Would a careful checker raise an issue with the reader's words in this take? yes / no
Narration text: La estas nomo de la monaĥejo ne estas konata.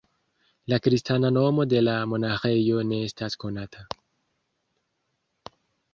yes